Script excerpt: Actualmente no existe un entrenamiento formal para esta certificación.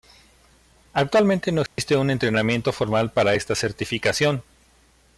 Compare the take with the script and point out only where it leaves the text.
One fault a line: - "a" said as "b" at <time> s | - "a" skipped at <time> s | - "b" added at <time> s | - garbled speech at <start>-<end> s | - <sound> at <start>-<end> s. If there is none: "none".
- dropout at 1.7-1.8 s